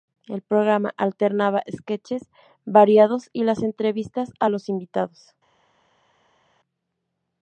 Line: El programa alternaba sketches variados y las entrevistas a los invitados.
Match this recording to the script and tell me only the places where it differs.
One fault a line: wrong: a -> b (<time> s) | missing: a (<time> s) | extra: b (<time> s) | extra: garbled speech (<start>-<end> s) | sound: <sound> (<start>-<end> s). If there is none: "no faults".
no faults